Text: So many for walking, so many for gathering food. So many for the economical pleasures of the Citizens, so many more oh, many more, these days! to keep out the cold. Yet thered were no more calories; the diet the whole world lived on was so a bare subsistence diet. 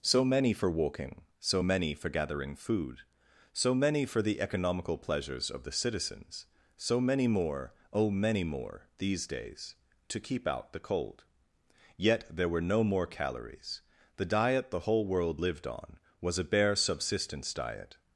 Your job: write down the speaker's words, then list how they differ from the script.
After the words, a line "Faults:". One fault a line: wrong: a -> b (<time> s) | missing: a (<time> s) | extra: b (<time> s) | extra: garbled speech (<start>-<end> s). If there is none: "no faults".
So many for walking, so many for gathering food. So many for the economical pleasures of the Citizens, so many more oh, many more, these days! to keep out the cold. Yet there were no more calories; the diet the whole world lived on was a bare subsistence diet.
Faults:
wrong: thered -> there (12.3 s)
missing: so (16.4 s)